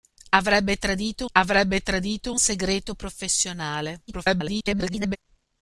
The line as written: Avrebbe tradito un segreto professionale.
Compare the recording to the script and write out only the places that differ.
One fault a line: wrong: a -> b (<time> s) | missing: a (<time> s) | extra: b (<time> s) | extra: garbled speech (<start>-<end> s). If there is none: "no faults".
extra: avrebbe tradito (1.3 s)
extra: garbled speech (4.1-5.2 s)